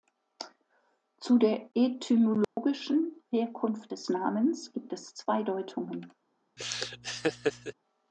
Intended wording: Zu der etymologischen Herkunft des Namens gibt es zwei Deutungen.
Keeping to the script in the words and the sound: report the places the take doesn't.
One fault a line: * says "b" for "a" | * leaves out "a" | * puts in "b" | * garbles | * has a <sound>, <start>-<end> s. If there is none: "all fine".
* has a dropout, 2.4-2.6 s
* has a laugh, 6.6-7.7 s